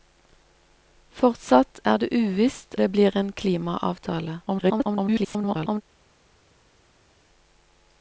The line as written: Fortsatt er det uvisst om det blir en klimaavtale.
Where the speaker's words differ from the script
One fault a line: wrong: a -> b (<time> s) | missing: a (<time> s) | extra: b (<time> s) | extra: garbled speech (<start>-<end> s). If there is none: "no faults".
missing: om (2.7 s)
extra: garbled speech (4.5-5.8 s)